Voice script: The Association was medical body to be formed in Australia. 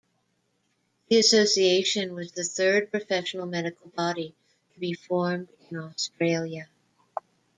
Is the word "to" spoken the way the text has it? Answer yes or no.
yes